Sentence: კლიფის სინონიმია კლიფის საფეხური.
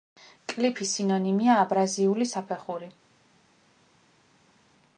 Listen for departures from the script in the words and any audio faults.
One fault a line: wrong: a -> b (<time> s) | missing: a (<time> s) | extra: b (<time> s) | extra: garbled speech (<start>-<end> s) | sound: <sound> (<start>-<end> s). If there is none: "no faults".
wrong: კლიფის -> აბრაზიული (1.6 s)